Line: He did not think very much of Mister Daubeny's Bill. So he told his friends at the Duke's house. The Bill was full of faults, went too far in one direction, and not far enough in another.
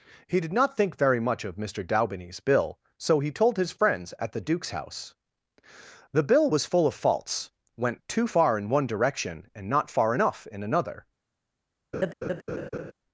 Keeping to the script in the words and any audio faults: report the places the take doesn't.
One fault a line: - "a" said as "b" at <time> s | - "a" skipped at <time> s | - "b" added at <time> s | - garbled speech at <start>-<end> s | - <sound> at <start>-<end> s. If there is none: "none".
- laugh at 11.9-12.9 s